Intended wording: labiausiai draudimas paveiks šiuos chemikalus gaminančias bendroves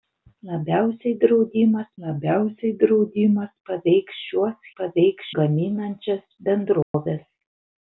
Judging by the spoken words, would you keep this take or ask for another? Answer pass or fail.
fail